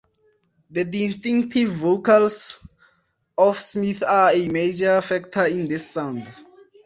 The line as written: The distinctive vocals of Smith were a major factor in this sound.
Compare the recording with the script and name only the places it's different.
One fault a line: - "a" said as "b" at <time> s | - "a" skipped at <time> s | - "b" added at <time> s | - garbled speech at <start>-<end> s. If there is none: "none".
- "were" said as "are" at 4.1 s